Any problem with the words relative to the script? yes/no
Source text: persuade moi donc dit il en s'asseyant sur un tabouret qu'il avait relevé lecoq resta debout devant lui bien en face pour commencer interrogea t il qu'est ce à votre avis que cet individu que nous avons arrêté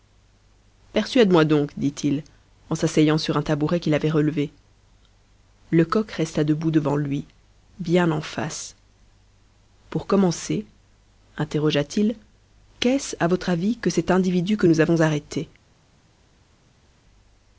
no